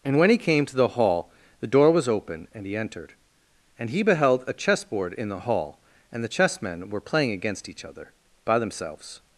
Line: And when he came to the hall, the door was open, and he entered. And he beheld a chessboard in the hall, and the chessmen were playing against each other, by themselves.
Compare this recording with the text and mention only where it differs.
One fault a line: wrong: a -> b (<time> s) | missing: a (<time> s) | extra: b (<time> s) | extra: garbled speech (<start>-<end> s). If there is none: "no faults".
no faults